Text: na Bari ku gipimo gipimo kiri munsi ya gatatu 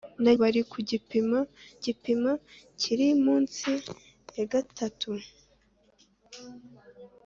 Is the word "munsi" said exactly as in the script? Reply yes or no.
yes